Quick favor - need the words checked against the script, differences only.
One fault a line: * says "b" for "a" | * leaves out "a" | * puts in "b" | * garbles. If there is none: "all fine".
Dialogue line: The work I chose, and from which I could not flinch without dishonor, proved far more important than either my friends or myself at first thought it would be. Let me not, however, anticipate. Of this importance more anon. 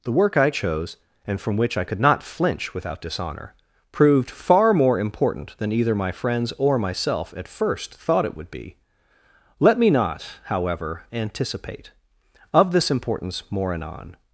all fine